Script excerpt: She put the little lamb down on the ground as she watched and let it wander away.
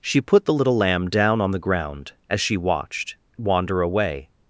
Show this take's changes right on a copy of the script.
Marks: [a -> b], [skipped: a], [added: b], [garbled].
She put the little lamb down on the ground as she watched [skipped: and let it] wander away.